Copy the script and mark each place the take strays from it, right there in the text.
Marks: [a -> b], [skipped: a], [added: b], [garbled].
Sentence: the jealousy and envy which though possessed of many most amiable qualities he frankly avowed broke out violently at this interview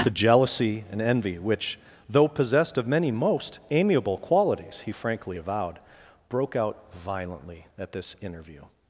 the jealousy and envy which though possessed of many most amiable qualities he frankly avowed broke out violently at this interview